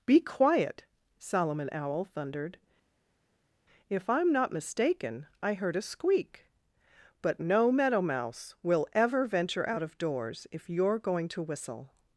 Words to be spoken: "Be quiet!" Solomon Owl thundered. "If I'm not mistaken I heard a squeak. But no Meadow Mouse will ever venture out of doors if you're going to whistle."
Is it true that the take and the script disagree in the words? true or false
false